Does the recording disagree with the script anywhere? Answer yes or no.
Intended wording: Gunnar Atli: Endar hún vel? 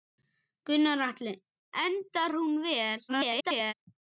yes